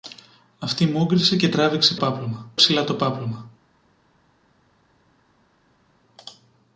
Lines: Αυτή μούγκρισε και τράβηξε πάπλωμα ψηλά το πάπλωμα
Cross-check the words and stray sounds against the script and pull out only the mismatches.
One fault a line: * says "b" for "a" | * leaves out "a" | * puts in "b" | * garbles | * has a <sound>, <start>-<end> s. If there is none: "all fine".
all fine